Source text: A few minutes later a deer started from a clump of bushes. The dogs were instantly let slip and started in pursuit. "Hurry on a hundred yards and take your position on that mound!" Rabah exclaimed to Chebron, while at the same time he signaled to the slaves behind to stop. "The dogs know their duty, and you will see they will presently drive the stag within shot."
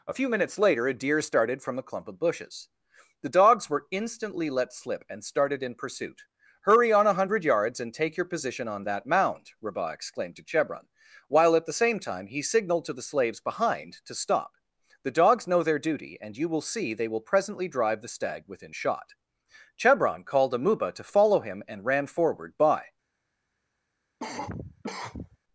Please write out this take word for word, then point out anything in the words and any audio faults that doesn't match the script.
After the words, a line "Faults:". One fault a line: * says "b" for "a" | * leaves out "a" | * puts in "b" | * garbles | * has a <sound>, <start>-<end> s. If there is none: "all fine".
A few minutes later a deer started from a clump of bushes. The dogs were instantly let slip and started in pursuit. "Hurry on a hundred yards and take your position on that mound!" Rabah exclaimed to Chebron, while at the same time he signaled to the slaves behind to stop. "The dogs know their duty, and you will see they will presently drive the stag within shot." Chebron called Amuba to follow him and ran forward. By
Faults:
* puts in "Chebron called Amuba to follow him and ran forward By"
* has a cough, 24.2-25.4 s